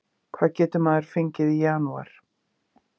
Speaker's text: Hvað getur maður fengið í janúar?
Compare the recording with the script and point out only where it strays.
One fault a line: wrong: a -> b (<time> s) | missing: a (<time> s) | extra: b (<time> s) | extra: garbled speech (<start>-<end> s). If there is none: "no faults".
no faults